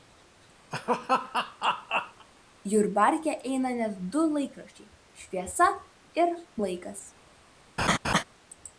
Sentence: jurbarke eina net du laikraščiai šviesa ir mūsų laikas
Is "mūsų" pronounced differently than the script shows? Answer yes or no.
yes